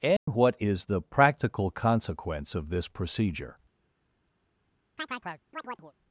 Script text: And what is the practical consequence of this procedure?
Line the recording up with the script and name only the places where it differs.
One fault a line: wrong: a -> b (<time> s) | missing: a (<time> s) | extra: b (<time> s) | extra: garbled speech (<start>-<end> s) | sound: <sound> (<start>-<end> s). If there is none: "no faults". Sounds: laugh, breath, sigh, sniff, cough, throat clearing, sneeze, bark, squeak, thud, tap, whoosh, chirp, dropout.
sound: dropout (0.2-0.3 s)
sound: chirp (5.0-5.9 s)